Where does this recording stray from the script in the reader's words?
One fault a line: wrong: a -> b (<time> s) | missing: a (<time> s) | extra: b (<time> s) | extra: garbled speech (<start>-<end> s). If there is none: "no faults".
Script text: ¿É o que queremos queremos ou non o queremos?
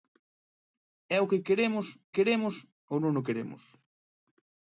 no faults